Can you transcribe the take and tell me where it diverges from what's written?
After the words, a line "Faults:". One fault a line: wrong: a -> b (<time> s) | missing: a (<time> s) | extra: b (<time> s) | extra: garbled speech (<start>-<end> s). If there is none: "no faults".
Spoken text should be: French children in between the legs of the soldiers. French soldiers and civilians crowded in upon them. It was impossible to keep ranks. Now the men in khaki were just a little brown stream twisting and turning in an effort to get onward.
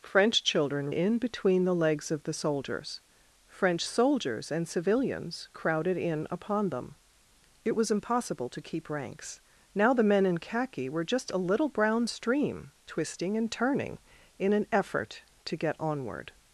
French children in between the legs of the soldiers. French soldiers and civilians crowded in upon them. It was impossible to keep ranks. Now the men in khaki were just a little brown stream twisting and turning in an effort to get onward.
Faults:
no faults